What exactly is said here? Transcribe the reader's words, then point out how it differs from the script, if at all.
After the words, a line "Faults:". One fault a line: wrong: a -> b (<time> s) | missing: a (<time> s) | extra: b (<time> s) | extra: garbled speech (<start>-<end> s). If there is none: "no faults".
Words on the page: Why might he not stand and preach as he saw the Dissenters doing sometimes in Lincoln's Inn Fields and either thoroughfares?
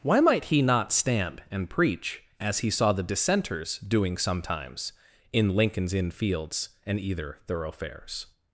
Why might he not stand and preach as he saw the Dissenters doing sometimes in Lincoln's Inn Fields and either thoroughfares?
Faults:
no faults